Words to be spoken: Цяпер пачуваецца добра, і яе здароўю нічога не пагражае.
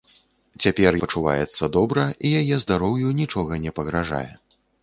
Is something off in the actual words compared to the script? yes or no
no